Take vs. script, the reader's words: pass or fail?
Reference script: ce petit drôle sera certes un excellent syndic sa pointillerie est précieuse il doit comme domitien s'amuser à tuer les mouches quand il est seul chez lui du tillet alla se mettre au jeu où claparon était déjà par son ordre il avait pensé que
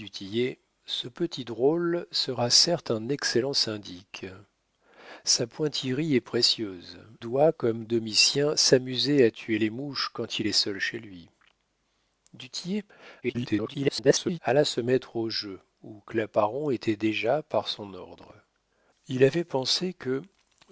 fail